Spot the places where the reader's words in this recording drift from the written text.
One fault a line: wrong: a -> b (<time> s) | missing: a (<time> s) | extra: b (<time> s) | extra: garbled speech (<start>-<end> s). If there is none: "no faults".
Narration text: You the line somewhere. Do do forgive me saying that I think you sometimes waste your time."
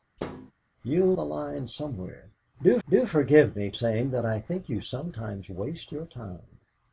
no faults